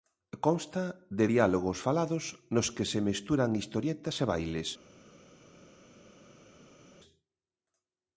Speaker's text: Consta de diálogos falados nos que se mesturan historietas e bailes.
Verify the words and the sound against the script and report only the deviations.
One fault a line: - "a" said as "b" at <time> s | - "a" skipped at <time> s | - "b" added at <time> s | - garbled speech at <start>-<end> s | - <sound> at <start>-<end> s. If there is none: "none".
none